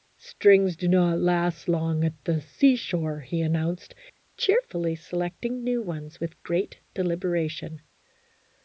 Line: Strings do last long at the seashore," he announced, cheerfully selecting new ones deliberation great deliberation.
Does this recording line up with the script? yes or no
no